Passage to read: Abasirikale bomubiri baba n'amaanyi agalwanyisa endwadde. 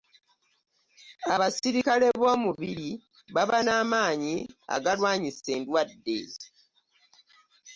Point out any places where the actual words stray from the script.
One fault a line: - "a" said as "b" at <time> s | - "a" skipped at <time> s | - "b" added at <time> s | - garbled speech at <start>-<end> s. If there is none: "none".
none